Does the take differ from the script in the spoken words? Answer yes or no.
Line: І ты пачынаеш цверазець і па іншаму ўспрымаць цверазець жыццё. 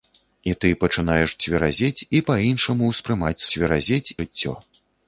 no